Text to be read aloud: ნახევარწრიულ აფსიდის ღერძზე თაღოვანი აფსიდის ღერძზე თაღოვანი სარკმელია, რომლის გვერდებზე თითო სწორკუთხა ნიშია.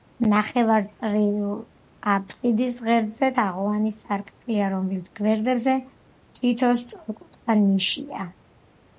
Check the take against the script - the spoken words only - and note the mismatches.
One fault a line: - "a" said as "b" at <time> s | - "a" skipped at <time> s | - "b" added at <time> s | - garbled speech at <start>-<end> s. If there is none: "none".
- "აფსიდის ღერძზე თაღოვანი" skipped at 3.9 s